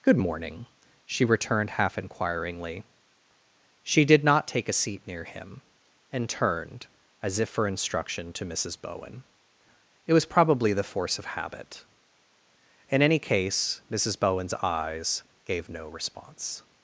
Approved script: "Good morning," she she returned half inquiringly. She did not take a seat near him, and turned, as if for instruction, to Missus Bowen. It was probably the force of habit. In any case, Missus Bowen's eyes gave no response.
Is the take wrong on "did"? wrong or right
right